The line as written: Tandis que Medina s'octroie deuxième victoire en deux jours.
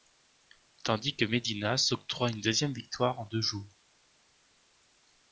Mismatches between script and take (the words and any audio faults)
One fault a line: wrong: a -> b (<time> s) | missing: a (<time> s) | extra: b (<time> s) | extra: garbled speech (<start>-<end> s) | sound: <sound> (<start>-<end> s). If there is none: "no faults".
extra: une (2.3 s)